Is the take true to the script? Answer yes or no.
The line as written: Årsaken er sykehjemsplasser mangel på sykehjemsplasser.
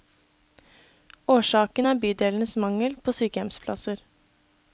no